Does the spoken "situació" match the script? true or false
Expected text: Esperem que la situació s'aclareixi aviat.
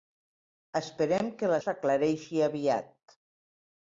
false